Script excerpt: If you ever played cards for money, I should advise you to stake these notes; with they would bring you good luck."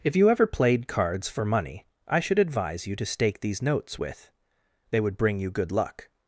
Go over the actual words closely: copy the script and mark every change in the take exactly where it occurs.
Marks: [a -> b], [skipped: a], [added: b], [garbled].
If you ever played cards for money, I should advise you to stake these notes; with they would bring you good luck."